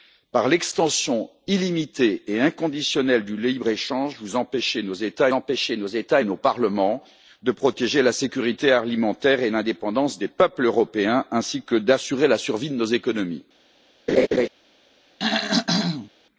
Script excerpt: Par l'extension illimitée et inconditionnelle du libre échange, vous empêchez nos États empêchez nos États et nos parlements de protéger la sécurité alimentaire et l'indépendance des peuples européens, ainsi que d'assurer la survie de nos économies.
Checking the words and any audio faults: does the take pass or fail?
fail